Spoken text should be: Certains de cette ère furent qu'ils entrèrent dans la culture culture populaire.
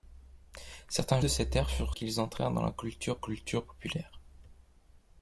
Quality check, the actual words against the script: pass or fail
pass